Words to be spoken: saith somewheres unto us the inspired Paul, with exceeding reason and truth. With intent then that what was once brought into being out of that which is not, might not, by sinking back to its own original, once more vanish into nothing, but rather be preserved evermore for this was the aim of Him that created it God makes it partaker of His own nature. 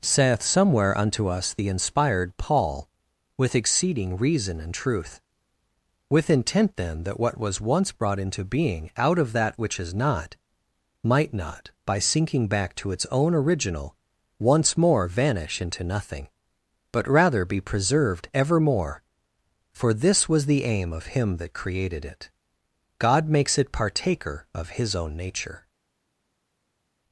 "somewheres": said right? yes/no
no